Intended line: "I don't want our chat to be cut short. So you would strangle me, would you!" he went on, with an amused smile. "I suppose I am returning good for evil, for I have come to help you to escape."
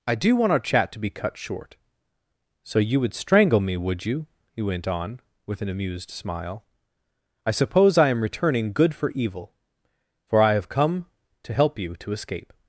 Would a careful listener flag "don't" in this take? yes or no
yes